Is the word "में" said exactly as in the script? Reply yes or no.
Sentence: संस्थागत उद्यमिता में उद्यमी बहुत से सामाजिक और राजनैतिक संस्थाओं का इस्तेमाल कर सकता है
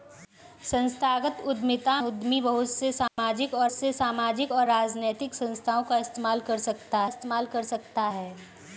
no